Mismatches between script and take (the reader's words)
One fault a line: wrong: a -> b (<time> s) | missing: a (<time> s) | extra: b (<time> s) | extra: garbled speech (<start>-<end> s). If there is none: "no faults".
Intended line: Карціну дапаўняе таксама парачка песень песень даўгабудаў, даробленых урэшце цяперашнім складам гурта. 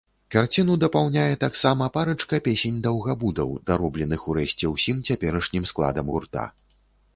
missing: песень (2.8 s)
extra: ўсім (4.8 s)